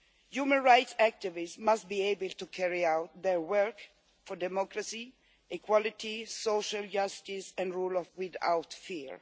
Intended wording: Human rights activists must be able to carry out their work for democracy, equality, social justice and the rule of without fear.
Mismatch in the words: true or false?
false